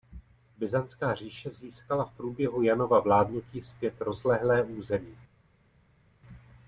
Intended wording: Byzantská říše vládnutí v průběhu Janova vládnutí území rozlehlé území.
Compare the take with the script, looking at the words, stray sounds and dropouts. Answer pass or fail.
fail